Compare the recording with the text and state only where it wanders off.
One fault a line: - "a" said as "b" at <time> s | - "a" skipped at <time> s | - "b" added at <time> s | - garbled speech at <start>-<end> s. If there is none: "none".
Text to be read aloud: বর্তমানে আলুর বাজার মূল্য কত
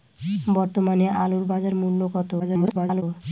- garbled speech at 2.4-3.0 s